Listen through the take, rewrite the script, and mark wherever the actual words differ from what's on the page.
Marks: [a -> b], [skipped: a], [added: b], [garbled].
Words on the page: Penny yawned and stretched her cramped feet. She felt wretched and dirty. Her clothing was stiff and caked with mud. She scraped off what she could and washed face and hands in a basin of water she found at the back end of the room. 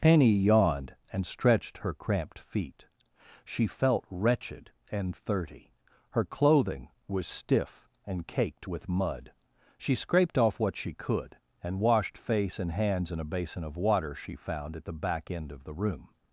Penny yawned and stretched her cramped feet. She felt wretched and [dirty. -> thirty] Her clothing was stiff and caked with mud. She scraped off what she could and washed face and hands in a basin of water she found at the back end of the room.